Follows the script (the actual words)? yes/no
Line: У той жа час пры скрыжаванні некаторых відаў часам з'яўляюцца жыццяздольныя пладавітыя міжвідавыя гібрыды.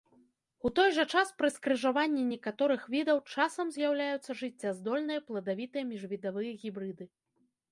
yes